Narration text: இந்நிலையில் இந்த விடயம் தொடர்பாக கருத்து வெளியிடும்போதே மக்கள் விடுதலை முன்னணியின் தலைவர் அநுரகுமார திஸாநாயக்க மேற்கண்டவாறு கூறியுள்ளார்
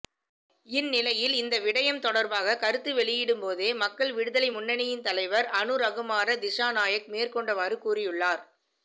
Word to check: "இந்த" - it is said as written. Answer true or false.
true